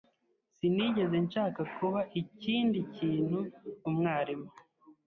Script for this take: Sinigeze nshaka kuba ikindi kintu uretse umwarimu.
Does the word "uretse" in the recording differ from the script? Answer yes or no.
yes